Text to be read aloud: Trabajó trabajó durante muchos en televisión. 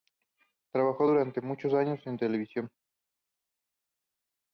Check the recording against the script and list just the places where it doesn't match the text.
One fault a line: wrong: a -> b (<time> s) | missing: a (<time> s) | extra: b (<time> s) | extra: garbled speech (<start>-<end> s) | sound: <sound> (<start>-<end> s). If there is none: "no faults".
missing: trabajó (1.1 s)
extra: años (1.7 s)